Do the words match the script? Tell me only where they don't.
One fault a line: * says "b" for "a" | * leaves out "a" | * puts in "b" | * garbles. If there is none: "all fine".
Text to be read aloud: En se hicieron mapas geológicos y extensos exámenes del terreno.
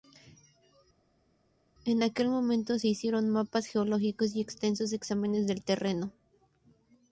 * puts in "aquel momento"